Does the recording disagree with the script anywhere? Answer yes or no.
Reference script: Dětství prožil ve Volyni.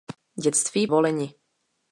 yes